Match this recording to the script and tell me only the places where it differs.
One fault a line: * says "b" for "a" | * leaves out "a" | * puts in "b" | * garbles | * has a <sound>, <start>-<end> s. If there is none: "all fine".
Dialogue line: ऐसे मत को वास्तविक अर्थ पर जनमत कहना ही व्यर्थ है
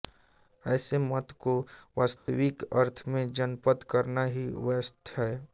* has a dropout, 2.2-2.3 s
* says "में" for "पर"